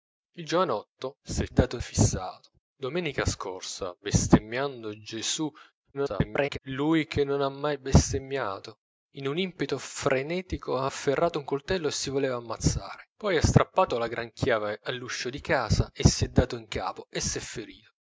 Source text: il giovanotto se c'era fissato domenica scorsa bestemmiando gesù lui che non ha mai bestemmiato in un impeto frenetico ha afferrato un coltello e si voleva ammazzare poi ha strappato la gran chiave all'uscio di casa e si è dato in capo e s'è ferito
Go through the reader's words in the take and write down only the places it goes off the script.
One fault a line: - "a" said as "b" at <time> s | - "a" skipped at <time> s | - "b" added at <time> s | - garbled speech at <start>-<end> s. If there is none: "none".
- "c'era" said as "dato" at 1.5 s
- garbled speech at 5.9-6.6 s